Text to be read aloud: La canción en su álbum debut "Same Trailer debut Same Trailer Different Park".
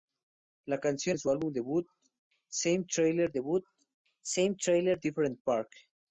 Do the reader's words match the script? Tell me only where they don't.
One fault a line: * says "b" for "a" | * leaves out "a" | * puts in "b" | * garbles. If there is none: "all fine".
all fine